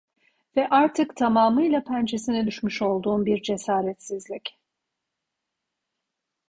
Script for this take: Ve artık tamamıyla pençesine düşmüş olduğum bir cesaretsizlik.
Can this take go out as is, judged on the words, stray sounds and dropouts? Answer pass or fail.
pass